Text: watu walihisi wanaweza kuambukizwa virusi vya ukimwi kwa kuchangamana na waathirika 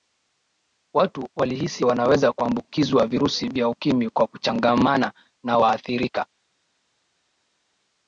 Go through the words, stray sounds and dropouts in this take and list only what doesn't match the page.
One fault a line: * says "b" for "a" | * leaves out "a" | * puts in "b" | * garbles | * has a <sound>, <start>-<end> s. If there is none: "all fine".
all fine